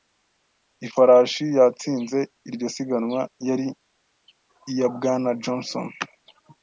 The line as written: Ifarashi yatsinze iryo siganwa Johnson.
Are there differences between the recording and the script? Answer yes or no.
yes